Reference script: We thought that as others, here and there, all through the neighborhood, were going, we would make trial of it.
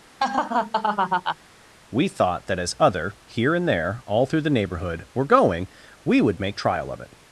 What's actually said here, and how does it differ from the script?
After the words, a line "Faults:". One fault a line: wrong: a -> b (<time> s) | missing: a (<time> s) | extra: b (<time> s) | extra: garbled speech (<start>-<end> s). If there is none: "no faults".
We thought that as other, here and there, all through the neighborhood, were going, we would make trial of it.
Faults:
wrong: others -> other (2.8 s)